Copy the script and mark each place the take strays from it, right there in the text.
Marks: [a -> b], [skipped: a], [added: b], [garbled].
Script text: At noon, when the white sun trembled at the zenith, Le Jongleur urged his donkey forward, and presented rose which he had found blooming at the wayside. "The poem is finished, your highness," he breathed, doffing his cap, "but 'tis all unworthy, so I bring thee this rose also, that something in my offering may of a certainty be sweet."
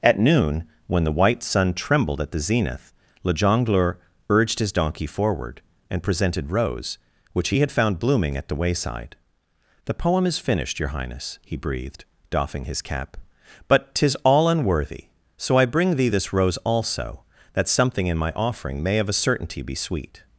At noon, when the white sun trembled at the zenith, Le Jongleur urged his donkey forward, and presented rose which he had found blooming at the wayside. "The poem is finished, your highness," he breathed, doffing his cap, "but 'tis all unworthy, so I bring thee this rose also, that something in my offering may of a certainty be sweet."